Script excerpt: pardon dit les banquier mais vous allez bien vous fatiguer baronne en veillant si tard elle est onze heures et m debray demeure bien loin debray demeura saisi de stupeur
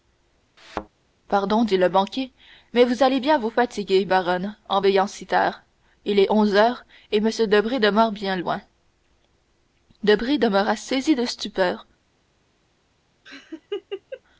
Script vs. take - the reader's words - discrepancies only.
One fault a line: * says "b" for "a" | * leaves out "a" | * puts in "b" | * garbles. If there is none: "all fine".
* says "le" for "les"
* says "il" for "elle"